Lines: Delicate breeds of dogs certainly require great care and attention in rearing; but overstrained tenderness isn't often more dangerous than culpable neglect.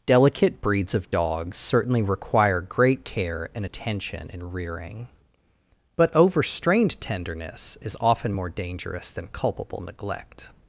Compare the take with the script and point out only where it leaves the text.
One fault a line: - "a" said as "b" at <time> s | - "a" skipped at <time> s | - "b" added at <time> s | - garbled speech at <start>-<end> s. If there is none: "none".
- "isn't" said as "is" at 7.8 s